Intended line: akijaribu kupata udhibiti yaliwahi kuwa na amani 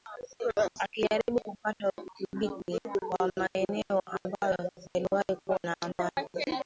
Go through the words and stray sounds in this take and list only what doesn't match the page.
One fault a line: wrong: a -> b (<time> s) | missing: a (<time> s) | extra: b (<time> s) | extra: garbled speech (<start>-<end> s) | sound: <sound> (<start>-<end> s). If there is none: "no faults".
extra: wa maeneo ambayo (3.2 s)